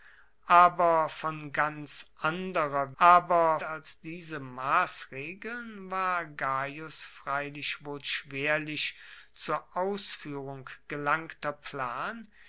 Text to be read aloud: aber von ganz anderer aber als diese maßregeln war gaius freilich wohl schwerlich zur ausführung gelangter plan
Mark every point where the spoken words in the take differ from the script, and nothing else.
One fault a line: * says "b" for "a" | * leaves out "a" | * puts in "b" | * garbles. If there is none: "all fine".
all fine